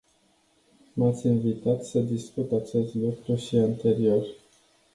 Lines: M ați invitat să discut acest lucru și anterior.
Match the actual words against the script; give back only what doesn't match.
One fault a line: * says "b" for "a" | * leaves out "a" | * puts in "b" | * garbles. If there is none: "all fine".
all fine